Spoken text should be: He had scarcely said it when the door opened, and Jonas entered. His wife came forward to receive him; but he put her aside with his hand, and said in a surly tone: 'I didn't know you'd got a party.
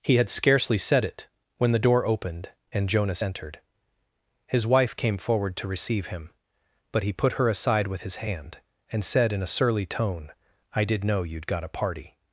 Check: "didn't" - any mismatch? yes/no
yes